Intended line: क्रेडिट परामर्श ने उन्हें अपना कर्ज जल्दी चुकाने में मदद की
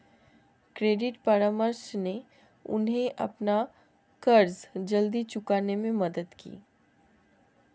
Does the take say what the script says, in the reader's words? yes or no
yes